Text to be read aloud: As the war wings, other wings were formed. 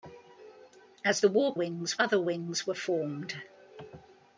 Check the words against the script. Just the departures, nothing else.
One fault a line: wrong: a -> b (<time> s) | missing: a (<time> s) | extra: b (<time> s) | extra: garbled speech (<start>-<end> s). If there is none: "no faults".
no faults